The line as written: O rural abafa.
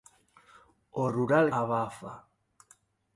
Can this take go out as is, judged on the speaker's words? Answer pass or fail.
pass